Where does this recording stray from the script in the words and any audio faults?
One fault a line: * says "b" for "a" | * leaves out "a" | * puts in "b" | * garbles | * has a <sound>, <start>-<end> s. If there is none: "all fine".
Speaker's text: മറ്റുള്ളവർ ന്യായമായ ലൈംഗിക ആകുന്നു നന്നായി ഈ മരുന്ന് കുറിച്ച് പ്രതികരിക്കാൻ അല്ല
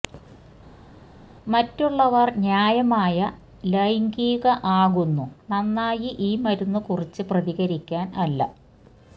all fine